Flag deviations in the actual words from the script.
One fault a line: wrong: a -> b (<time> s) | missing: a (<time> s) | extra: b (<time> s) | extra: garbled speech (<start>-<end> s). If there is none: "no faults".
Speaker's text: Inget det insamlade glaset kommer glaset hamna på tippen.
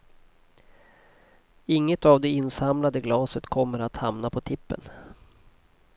extra: av (2.0 s)
wrong: glaset -> att (3.8 s)